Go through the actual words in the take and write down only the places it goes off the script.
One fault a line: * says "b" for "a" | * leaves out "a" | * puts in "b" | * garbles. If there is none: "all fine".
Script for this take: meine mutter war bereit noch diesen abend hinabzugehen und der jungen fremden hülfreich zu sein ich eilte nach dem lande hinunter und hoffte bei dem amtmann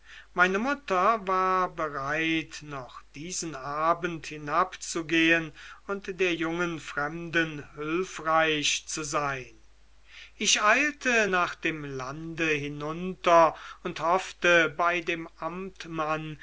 all fine